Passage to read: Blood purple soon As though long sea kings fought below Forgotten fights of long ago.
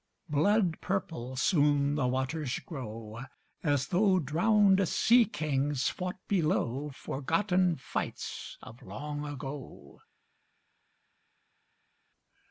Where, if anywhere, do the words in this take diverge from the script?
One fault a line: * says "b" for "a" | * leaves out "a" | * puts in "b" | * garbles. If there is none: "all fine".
* puts in "the waters grow"
* says "drowned" for "long"